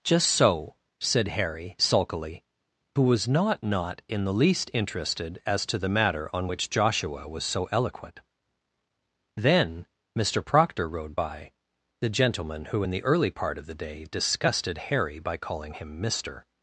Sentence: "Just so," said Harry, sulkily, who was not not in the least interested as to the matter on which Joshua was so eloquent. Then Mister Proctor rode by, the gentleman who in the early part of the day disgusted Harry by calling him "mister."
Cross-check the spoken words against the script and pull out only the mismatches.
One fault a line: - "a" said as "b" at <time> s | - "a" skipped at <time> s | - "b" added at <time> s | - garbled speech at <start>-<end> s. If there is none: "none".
none